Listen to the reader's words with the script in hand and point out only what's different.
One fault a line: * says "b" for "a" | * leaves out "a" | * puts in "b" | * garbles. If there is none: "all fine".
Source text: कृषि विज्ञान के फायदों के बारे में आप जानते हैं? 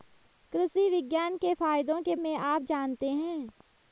* leaves out "बारे"